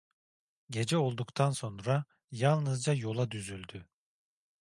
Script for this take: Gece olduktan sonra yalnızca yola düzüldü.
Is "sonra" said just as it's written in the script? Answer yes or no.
yes